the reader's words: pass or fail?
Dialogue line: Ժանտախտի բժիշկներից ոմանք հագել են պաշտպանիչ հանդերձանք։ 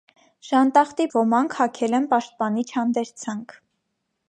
fail